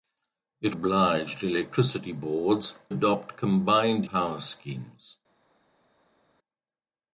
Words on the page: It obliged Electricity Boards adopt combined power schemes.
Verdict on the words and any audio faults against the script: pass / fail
pass